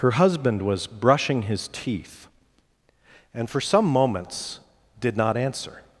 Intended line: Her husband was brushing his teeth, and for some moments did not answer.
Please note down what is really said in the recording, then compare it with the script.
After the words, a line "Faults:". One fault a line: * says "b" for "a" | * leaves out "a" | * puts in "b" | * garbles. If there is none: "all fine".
Her husband was brushing his teeth, and for some moments did not answer.
Faults:
all fine